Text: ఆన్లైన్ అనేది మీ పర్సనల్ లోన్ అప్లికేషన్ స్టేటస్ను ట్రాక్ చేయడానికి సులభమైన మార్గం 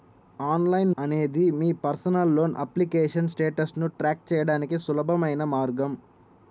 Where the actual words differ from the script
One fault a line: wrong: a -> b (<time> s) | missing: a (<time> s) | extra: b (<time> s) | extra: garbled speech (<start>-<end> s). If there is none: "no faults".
no faults